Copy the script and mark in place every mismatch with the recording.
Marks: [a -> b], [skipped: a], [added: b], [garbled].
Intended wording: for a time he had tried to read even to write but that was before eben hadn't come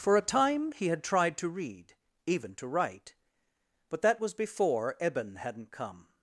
for a time he had tried to read even to write but that was before eben hadn't come